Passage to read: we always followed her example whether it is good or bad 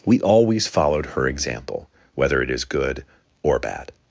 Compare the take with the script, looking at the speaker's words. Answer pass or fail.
pass